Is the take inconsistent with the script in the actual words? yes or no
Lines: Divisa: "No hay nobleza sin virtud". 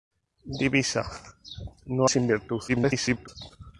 yes